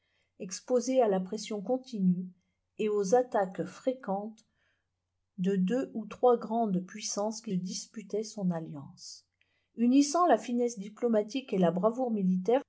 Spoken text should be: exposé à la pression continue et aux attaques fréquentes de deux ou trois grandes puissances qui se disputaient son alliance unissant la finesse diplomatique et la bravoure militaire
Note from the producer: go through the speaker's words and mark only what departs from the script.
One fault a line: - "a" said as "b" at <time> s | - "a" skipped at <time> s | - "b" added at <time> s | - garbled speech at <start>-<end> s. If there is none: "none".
- "se" skipped at 7.5 s